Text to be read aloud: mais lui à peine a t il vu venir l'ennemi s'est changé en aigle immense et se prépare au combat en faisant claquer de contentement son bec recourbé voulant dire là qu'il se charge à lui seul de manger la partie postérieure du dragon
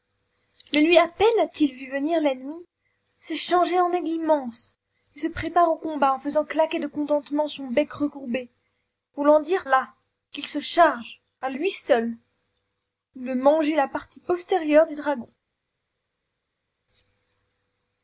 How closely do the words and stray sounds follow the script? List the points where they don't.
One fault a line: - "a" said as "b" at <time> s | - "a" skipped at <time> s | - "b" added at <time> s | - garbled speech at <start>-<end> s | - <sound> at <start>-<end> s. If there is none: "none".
none